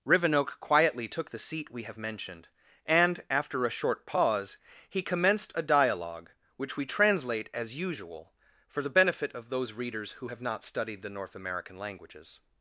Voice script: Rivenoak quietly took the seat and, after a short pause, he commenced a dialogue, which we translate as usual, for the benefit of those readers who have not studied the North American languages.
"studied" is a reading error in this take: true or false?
false